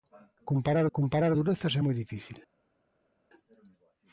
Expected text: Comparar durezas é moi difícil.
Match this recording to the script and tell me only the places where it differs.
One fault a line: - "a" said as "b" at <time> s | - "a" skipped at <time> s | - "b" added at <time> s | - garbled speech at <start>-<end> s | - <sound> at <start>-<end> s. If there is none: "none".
- "comparar" added at 1.0 s